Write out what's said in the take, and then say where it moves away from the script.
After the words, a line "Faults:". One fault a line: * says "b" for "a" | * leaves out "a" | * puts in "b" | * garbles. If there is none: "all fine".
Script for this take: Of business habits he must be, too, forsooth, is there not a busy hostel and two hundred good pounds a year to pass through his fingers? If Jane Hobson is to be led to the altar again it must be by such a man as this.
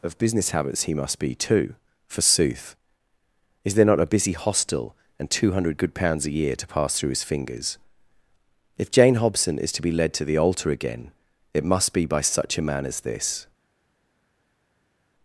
Of business habits he must be, too, forsooth, is there not a busy hostel and two hundred good pounds a year to pass through his fingers? If Jane Hobson is to be led to the altar again it must be by such a man as this.
Faults:
all fine